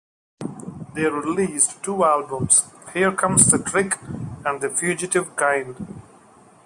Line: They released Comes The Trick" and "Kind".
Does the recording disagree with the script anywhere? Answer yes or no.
yes